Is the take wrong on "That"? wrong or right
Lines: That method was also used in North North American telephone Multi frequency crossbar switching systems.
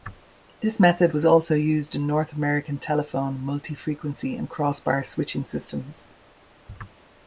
wrong